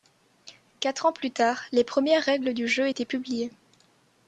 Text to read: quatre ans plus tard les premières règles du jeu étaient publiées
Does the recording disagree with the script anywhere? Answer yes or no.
no